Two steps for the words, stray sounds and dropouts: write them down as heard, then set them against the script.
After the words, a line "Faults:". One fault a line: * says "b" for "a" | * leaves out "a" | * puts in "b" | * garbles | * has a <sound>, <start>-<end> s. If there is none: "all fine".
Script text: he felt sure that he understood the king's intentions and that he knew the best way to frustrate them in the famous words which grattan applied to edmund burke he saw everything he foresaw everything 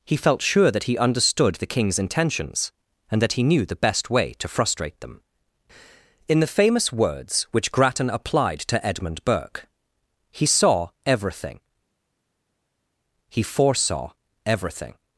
he felt sure that he understood the king's intentions and that he knew the best way to frustrate them in the famous words which grattan applied to edmund burke he saw everything he foresaw everything
Faults:
all fine